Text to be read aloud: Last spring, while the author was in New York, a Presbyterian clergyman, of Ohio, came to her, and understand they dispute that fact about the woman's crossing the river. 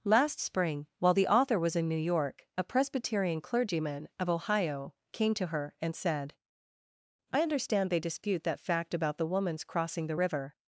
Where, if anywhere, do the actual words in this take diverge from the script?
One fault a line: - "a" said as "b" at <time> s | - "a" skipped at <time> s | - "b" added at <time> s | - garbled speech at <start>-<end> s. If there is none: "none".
- "said I" added at 6.0 s